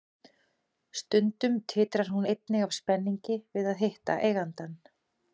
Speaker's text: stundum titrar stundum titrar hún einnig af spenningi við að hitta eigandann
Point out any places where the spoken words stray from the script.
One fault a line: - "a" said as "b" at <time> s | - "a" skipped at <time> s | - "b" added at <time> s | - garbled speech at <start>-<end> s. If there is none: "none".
- "stundum titrar" skipped at 2.1 s